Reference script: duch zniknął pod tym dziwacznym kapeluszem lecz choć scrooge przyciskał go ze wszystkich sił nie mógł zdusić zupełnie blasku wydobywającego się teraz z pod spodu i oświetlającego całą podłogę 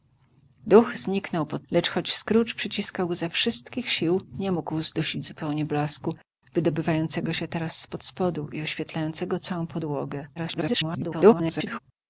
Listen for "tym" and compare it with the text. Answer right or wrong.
wrong